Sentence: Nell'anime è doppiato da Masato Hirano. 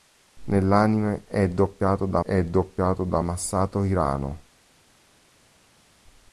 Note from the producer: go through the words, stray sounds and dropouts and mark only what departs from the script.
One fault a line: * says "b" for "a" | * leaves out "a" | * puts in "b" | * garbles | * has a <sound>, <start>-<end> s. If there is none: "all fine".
* puts in "è doppiato da"